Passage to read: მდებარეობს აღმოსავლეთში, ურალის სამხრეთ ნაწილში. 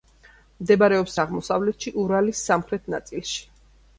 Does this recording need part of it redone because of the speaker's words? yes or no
no